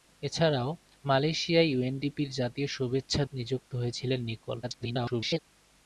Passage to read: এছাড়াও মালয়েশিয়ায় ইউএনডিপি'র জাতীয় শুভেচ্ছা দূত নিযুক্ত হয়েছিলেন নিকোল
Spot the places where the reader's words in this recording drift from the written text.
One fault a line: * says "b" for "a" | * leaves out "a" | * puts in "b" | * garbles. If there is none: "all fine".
* leaves out "দূত"
* garbles